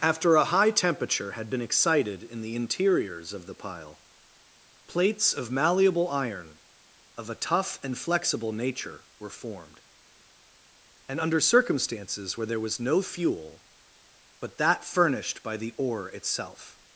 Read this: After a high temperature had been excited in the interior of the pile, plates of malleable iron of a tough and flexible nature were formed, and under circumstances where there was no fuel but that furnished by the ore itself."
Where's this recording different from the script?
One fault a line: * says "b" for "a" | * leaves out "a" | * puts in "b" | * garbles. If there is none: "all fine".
* says "interiors" for "interior"